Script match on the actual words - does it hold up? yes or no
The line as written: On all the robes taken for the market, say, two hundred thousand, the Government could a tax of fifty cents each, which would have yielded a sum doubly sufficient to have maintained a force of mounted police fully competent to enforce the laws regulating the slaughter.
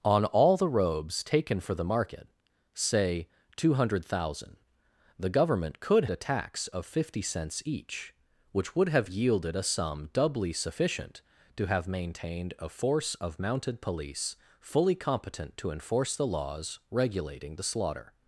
yes